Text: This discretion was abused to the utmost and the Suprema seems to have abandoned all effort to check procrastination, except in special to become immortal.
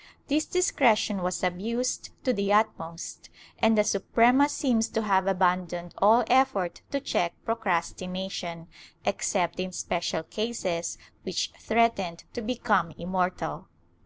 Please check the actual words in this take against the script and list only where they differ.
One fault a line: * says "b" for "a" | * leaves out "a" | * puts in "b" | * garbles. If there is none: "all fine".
* puts in "cases which threatened"